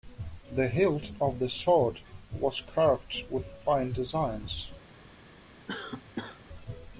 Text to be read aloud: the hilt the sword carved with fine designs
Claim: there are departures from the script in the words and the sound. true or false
true